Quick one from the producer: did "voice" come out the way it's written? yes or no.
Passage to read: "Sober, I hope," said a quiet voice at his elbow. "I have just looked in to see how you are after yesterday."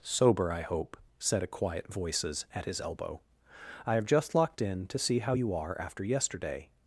no